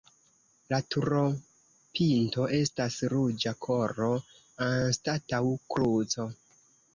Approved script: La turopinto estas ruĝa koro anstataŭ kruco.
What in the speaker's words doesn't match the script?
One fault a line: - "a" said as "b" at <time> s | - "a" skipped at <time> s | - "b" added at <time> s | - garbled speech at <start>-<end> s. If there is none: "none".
none